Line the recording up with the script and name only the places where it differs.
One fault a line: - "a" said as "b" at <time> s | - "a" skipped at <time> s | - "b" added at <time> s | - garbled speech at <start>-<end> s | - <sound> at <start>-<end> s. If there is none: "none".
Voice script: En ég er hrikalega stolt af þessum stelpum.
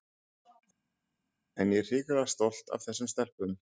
none